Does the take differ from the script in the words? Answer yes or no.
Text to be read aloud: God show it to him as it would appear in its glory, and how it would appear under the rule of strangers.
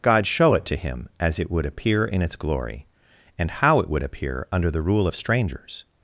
no